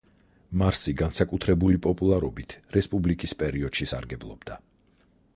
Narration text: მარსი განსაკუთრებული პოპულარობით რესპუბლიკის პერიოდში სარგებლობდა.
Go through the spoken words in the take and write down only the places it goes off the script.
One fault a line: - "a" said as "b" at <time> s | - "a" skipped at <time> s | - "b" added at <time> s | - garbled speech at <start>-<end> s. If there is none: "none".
none